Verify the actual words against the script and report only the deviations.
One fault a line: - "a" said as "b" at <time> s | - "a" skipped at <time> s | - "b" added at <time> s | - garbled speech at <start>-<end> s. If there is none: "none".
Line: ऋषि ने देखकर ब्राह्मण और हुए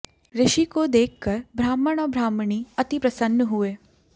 - "ने" said as "को" at 0.7 s
- "ब्राह्मणी अति प्रसन्न" added at 2.1 s